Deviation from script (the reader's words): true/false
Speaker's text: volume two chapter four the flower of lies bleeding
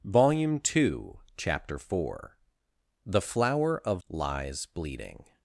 false